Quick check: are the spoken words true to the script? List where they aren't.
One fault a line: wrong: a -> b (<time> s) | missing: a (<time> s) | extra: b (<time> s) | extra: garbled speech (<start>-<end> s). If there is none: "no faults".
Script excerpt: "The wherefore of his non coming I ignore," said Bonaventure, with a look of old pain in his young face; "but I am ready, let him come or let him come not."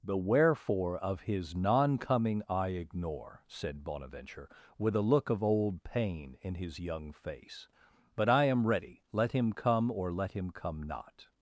no faults